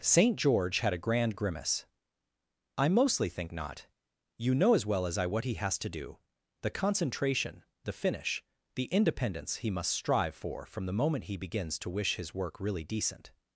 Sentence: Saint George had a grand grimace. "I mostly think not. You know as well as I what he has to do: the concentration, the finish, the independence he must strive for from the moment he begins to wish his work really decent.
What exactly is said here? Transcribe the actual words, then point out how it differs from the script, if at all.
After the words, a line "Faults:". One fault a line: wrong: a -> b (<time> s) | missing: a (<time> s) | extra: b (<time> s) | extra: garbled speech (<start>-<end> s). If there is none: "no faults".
Saint George had a grand grimace. "I mostly think not. You know as well as I what he has to do: the concentration, the finish, the independence he must strive for from the moment he begins to wish his work really decent.
Faults:
no faults